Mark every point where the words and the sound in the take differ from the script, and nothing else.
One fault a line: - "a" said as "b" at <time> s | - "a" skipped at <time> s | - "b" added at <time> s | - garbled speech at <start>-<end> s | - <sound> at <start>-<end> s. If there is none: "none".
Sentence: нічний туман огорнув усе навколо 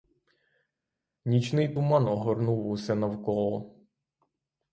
none